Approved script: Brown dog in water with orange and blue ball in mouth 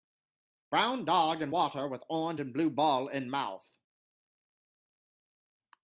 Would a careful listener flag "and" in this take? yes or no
no